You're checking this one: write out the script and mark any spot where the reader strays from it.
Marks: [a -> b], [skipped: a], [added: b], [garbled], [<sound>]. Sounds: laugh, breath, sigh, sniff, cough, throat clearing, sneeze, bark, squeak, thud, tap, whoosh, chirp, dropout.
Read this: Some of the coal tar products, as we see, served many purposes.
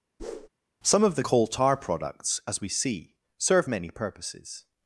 [whoosh] Some of the coal tar products, as we see, [served -> serve] many purposes.